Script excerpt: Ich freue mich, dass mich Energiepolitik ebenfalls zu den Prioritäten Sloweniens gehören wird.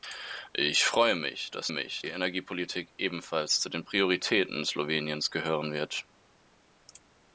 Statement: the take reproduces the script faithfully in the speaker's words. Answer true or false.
true